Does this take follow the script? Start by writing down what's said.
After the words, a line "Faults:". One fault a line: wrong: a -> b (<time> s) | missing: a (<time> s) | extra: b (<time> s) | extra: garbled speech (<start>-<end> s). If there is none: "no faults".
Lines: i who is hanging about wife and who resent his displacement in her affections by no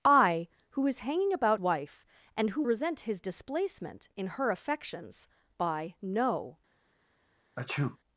i who is hanging about wife and who resent his displacement in her affections by no
Faults:
no faults